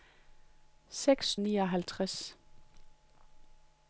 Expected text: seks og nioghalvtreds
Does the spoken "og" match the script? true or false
true